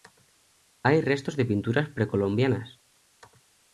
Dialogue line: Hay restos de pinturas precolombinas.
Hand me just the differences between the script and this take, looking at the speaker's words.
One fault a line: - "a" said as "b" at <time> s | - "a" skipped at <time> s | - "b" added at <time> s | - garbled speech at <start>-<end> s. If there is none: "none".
none